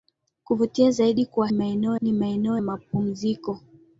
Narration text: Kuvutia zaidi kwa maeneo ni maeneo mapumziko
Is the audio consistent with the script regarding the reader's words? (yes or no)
yes